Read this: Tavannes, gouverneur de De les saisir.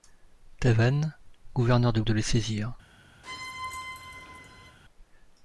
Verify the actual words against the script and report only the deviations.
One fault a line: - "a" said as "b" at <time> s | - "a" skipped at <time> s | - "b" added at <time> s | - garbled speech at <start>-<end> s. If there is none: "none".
none